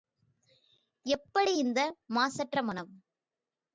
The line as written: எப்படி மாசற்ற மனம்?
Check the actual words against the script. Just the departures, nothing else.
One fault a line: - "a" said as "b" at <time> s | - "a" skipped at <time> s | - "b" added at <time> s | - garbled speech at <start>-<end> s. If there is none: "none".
- "இந்த" added at 1.5 s